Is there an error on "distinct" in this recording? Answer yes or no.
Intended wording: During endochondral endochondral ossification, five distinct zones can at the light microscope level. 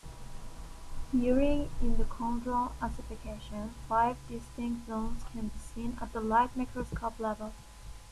no